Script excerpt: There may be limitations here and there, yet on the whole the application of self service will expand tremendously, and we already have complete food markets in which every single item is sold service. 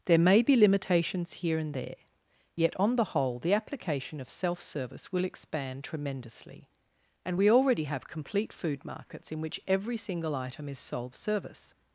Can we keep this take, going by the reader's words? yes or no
yes